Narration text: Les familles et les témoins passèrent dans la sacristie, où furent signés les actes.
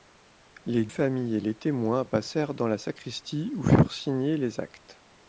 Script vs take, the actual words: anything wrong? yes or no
no